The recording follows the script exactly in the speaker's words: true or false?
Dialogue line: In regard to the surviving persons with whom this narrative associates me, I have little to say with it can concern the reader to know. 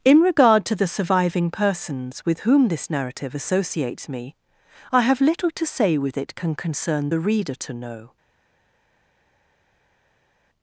true